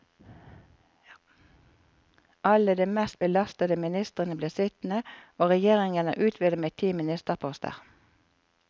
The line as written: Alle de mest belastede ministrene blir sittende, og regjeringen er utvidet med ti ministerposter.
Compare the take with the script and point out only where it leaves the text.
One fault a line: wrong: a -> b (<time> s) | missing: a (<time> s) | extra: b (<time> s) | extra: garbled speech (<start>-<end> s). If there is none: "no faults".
no faults